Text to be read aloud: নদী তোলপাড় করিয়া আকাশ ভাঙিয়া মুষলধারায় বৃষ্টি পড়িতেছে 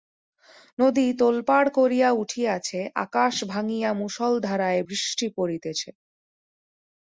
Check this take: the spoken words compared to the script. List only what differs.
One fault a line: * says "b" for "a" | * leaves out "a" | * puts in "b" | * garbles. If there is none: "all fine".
* puts in "উঠিয়াছে"